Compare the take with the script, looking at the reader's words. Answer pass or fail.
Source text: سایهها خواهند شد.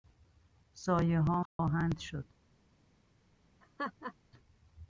pass